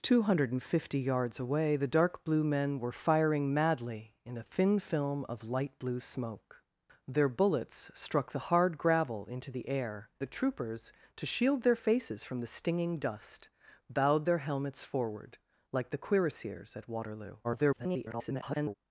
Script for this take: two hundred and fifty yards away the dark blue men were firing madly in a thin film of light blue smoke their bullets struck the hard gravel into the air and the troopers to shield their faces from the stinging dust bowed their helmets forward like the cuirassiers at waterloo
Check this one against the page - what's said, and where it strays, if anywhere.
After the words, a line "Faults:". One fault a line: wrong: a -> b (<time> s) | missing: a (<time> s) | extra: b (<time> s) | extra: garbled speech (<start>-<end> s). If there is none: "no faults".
two hundred and fifty yards away the dark blue men were firing madly in a thin film of light blue smoke their bullets struck the hard gravel into the air the troopers to shield their faces from the stinging dust bowed their helmets forward like the cuirassiers at waterloo [garbled]
Faults:
missing: and (10.1 s)
extra: garbled speech (17.4-18.7 s)